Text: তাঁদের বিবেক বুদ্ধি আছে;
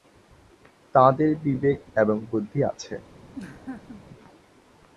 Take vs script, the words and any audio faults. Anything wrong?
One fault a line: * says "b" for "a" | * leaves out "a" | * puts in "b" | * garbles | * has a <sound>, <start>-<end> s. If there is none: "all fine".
* puts in "এবং"
* has a laugh, 3.3-4.0 s